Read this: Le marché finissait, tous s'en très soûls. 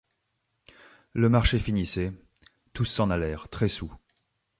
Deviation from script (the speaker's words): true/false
true